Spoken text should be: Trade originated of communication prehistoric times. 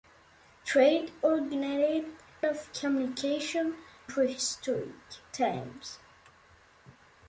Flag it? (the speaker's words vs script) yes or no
no